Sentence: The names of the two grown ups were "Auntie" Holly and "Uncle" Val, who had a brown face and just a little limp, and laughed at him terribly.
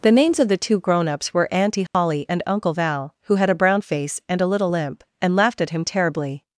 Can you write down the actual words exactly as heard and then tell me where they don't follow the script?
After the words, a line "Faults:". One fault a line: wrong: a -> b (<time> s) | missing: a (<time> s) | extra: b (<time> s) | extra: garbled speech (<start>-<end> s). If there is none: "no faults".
The names of the two grown ups were "Auntie" Holly and "Uncle" Val, who had a brown face and a little limp, and laughed at him terribly.
Faults:
missing: just (4.4 s)